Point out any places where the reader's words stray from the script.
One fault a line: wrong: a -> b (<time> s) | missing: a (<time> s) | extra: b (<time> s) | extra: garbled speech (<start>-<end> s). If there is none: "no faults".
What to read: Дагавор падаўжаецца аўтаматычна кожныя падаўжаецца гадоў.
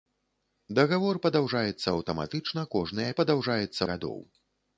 no faults